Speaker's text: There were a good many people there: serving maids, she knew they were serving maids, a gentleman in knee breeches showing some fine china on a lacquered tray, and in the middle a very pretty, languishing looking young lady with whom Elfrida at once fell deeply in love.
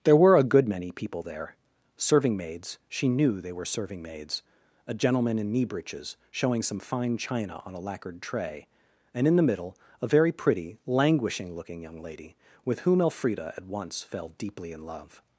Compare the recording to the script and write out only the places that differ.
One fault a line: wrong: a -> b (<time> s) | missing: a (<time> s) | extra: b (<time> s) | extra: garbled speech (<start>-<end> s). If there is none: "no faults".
no faults